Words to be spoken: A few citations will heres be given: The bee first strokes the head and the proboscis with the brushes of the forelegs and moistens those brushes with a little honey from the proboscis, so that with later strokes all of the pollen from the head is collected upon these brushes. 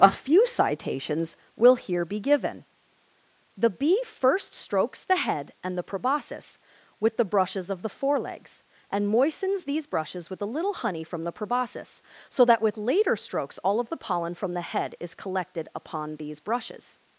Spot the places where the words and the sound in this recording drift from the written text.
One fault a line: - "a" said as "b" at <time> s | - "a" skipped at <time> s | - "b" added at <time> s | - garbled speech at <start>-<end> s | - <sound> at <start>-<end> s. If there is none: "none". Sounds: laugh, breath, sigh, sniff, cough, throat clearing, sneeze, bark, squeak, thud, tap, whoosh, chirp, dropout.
- "heres" said as "here" at 1.8 s
- "those" said as "these" at 9.7 s